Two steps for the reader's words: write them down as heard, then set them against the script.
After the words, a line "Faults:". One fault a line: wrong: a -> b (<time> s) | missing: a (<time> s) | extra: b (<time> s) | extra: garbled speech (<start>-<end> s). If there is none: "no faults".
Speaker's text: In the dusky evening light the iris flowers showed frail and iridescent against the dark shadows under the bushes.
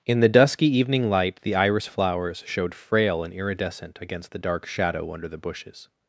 In the dusky evening light the iris flowers showed frail and iridescent against the dark shadow under the bushes.
Faults:
wrong: shadows -> shadow (4.7 s)